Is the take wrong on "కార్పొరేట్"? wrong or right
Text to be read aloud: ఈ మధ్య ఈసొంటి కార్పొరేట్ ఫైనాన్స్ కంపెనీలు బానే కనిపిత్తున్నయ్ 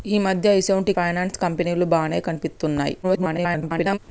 wrong